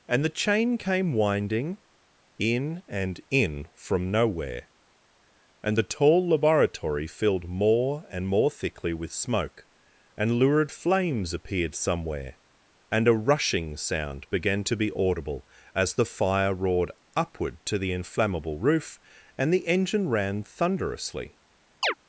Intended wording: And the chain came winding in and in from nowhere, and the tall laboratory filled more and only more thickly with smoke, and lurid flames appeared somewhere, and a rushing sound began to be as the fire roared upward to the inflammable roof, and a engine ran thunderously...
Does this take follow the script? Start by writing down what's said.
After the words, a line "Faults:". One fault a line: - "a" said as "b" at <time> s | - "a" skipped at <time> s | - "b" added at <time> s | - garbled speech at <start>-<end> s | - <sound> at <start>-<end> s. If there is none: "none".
And the chain came winding in and in from nowhere, and the tall laboratory filled more and more thickly with smoke, and lurid flames appeared somewhere, and a rushing sound began to be audible as the fire roared upward to the inflammable roof, and the engine ran thunderously...
Faults:
- "only" skipped at 8.3 s
- "audible" added at 15.0 s
- "a" said as "the" at 19.5 s
- chirp at 21.8-21.9 s